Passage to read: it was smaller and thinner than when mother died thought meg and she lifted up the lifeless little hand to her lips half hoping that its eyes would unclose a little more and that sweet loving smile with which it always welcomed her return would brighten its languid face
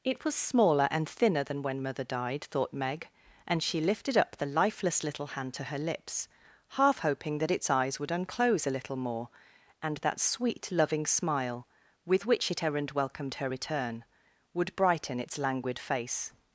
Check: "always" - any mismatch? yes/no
yes